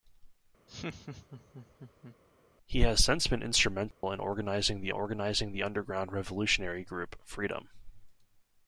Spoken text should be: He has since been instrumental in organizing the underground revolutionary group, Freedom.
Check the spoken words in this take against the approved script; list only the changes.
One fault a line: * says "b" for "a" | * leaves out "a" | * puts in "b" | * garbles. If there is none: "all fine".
* puts in "organizing the"